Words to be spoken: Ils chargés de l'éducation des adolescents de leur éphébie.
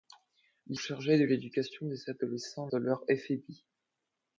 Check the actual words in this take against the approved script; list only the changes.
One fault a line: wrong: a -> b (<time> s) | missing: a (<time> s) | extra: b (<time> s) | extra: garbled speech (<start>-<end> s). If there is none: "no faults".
no faults